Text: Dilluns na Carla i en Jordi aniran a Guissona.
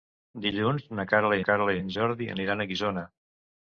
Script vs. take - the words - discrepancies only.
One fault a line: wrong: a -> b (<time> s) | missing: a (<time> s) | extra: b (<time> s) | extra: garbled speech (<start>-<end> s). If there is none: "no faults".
extra: Carla (1.5 s)